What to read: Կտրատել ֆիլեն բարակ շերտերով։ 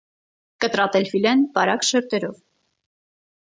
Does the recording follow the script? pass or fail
pass